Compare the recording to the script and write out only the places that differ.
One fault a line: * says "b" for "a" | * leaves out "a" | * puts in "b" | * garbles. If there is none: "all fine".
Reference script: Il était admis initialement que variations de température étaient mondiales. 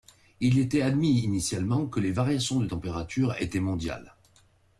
* puts in "les"